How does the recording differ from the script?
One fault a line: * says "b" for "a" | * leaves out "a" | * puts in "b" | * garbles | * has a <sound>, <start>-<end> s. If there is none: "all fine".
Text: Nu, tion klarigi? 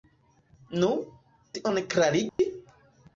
* has a dropout, 2.3-2.4 s